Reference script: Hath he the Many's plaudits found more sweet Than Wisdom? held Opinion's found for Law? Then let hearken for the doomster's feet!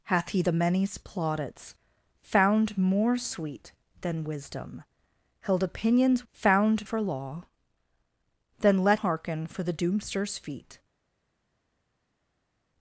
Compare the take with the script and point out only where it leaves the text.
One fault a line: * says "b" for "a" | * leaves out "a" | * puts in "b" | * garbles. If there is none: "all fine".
all fine